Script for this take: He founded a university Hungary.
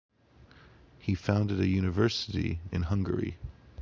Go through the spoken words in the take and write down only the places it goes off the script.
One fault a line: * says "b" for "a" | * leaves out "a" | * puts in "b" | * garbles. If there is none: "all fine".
* puts in "in"